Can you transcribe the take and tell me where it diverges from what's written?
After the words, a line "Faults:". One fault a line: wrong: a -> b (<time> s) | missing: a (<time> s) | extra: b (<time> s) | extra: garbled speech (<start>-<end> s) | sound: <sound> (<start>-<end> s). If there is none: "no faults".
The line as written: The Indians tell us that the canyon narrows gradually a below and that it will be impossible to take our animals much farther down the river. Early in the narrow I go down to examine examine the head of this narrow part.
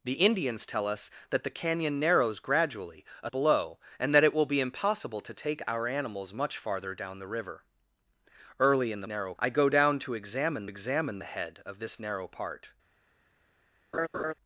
The Indians tell us that the canyon narrows gradually a below and that it will be impossible to take our animals much farther down the river. Early in the narrow I go down to examine examine the head of this narrow part.
Faults:
sound: laugh (13.9-14.3 s)